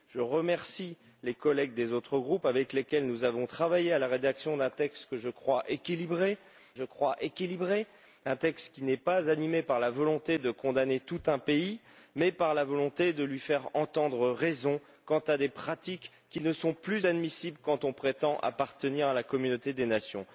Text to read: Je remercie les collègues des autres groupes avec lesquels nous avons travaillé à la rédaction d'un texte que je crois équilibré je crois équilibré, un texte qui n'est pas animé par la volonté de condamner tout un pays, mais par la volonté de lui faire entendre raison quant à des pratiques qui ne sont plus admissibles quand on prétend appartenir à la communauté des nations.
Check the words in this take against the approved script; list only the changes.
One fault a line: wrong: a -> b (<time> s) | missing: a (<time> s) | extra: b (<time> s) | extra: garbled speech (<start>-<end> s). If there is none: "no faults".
no faults